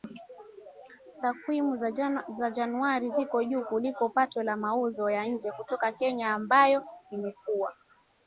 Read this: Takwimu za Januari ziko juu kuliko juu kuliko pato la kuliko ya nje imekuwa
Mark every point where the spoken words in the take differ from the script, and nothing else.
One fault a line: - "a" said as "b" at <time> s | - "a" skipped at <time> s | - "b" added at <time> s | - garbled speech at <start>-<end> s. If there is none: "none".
- "juu kuliko" skipped at 4.1 s
- "kuliko" said as "mauzo" at 4.6 s
- "kutoka Kenya ambayo" added at 5.5 s